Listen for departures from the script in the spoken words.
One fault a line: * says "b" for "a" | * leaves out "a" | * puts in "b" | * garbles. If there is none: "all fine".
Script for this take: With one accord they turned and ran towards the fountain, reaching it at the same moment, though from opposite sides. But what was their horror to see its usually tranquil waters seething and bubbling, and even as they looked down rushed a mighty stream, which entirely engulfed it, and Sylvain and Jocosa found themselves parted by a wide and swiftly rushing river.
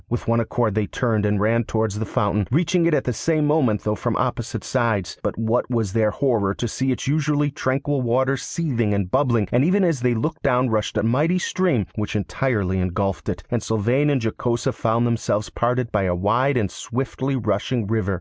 all fine